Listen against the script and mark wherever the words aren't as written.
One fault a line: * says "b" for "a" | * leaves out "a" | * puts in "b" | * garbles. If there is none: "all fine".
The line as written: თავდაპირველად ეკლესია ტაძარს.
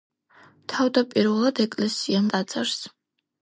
all fine